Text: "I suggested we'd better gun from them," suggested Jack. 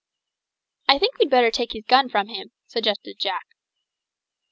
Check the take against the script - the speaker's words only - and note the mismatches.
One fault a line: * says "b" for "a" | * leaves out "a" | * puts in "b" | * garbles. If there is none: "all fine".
* says "think" for "suggested"
* puts in "take his"
* says "him" for "them"